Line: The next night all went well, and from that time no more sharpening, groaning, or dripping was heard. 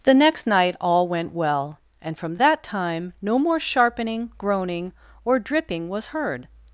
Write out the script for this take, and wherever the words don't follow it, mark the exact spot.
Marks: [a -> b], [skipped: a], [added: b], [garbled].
The next night all went well, and from that time no more sharpening, groaning, or dripping was heard.